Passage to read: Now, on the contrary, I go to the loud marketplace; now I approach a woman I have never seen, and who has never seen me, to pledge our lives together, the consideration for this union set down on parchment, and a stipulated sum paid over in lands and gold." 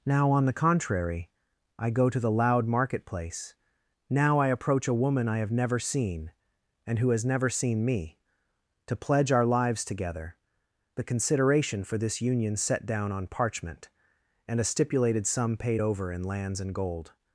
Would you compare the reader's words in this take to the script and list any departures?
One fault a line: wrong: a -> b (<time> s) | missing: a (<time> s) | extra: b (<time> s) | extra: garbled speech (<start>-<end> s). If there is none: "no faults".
no faults